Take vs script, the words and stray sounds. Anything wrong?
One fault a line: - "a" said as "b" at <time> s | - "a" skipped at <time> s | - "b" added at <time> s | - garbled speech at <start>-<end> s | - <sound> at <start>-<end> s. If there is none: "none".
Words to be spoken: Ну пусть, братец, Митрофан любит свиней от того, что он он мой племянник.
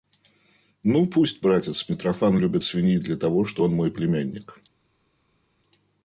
- "от" said as "для" at 3.0 s
- "он" skipped at 3.7 s